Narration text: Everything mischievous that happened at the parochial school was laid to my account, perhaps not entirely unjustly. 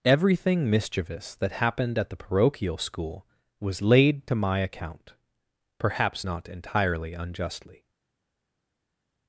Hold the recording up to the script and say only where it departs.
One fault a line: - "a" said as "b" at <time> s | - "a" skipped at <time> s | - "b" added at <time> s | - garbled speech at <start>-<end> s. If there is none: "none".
none